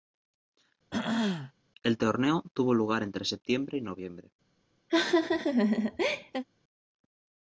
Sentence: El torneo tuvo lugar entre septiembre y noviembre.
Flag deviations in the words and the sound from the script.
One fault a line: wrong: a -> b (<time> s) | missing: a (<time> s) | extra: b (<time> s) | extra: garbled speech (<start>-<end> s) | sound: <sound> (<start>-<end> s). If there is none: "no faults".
sound: throat clearing (0.9-1.5 s)
sound: laugh (4.9-6.4 s)